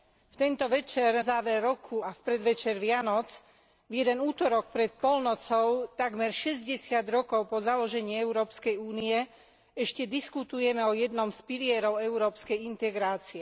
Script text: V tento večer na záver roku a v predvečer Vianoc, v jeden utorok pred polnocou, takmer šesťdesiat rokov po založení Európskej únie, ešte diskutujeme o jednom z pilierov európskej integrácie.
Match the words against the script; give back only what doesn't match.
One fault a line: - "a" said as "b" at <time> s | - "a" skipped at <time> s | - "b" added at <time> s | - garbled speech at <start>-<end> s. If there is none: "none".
- "na" skipped at 1.2 s